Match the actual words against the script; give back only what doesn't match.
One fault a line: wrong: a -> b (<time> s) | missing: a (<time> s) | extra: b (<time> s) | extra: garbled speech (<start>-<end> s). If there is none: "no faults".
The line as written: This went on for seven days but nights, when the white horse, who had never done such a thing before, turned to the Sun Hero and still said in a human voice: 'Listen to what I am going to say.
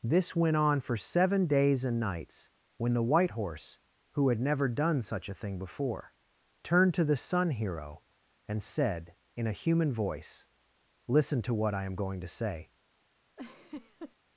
wrong: but -> and (1.9 s)
missing: still (8.6 s)